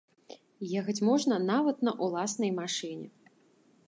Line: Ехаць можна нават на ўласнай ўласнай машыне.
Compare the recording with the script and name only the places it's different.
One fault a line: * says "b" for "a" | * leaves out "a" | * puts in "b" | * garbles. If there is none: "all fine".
* leaves out "ўласнай"